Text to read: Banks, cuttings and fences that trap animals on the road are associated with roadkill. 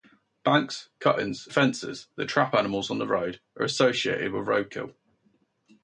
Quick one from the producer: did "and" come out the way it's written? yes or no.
no